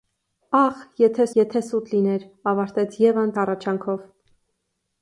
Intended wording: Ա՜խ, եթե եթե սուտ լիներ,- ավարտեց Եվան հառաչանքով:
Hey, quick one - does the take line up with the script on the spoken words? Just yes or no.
yes